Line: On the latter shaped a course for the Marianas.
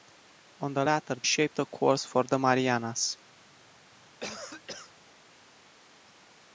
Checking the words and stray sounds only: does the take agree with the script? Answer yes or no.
no